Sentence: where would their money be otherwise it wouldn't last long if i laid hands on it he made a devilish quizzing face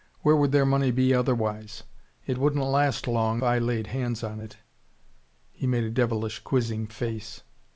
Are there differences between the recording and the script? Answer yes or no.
yes